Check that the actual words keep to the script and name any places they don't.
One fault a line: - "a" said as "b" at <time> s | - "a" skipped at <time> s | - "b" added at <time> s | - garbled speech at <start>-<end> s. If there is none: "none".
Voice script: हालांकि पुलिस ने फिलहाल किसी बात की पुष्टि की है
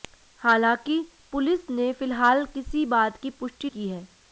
none